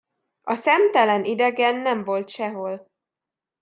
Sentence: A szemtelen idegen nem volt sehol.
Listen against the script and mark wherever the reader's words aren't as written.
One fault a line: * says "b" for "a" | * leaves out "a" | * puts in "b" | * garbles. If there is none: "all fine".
all fine